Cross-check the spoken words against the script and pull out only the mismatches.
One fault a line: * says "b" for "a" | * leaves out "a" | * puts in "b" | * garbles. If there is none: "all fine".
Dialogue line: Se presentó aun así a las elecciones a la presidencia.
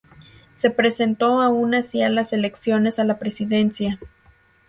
all fine